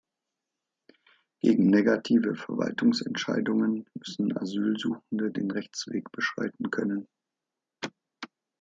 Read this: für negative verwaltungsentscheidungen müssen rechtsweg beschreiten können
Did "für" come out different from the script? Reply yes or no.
yes